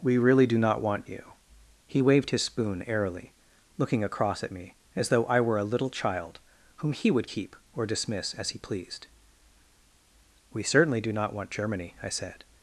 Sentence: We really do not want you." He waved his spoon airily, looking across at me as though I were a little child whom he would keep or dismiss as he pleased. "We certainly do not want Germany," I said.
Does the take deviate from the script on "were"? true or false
false